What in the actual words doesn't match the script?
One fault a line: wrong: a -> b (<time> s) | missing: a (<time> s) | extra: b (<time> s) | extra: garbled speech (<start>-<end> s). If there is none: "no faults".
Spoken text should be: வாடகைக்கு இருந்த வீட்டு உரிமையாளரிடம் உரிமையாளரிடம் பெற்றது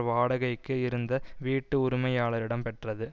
missing: உரிமையாளரிடம் (2.6 s)